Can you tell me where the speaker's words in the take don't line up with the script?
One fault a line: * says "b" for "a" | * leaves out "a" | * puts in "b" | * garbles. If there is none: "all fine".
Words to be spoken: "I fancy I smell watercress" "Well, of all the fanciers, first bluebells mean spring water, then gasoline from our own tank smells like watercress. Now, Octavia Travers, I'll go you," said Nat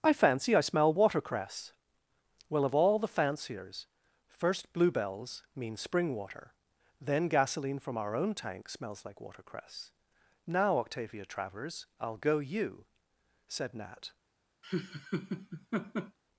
all fine